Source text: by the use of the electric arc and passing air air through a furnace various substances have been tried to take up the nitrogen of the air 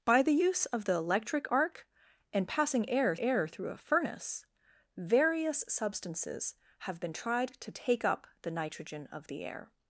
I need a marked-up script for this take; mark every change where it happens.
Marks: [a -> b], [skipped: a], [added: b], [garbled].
by the use of the electric arc and passing air air through a furnace various substances have been tried to take up the nitrogen of the air